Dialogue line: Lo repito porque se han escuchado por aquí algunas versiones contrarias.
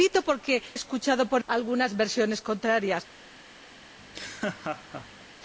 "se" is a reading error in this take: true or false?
true